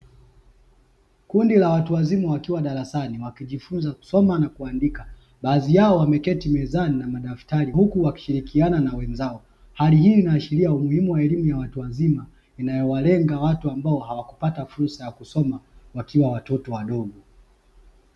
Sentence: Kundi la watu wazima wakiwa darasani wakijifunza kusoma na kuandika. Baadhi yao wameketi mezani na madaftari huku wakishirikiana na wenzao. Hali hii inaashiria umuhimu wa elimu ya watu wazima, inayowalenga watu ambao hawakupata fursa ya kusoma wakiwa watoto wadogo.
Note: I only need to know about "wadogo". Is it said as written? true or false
true